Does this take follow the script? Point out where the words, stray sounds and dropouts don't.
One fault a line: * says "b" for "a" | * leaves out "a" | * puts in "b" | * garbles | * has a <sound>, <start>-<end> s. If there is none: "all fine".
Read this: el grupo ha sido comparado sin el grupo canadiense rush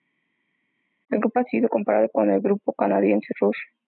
* says "con" for "sin"